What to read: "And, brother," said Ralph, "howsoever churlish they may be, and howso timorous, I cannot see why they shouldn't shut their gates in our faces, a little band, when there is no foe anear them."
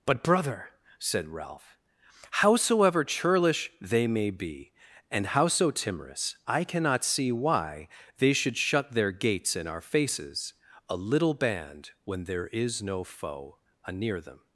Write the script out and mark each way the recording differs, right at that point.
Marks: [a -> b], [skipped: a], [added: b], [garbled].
["And, -> But] brother," said Ralph, "howsoever churlish they may be, and howso timorous, I cannot see why they [shouldn't -> should] shut their gates in our faces, a little band, when there is no foe anear them."